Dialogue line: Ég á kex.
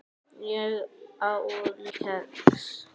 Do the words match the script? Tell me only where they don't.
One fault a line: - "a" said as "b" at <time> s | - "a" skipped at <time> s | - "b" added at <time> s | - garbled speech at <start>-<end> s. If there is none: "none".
none